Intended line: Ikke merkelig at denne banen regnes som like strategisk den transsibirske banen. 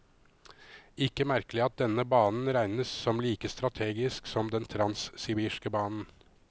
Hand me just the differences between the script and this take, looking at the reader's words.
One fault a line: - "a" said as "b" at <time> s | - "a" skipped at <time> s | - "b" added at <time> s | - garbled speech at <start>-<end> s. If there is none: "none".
- "som" added at 4.3 s